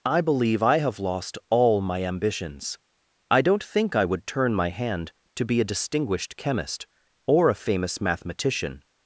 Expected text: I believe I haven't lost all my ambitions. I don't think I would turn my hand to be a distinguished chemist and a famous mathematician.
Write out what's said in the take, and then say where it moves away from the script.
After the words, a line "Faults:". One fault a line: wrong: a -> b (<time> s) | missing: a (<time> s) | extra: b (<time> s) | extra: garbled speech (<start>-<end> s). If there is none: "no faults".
I believe I have lost all my ambitions. I don't think I would turn my hand to be a distinguished chemist or a famous mathematician.
Faults:
wrong: haven't -> have (0.8 s)
wrong: and -> or (7.3 s)